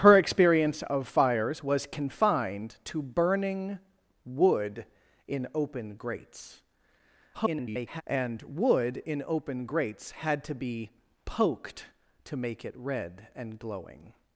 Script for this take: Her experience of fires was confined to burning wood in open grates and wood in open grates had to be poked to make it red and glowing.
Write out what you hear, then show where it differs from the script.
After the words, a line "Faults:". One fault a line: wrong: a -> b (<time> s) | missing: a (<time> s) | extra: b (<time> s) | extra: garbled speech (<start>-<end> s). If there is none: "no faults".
Her experience of fires was confined to burning wood in open grates [garbled] and wood in open grates had to be poked to make it red and glowing.
Faults:
extra: garbled speech (7.3-8.0 s)